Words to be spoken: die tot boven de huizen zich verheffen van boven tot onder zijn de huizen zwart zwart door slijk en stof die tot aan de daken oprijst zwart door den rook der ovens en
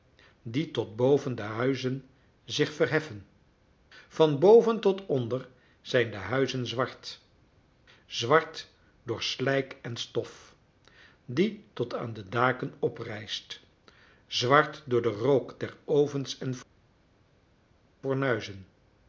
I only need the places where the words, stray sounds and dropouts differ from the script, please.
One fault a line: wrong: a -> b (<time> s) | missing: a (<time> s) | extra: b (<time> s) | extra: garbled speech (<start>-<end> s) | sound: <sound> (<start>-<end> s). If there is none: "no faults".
no faults